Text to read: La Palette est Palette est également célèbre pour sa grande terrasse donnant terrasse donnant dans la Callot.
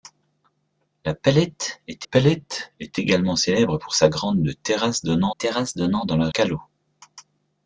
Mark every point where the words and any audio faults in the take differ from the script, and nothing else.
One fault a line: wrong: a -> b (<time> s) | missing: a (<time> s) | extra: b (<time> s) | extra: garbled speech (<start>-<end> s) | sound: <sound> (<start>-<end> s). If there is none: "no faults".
no faults